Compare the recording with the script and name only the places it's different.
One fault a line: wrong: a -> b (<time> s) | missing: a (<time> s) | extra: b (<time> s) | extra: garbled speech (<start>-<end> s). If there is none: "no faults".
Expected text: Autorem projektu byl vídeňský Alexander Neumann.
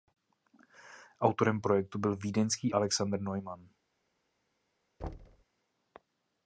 no faults